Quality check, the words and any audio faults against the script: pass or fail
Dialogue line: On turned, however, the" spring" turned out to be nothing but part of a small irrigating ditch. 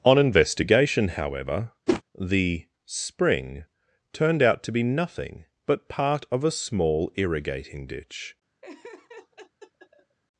fail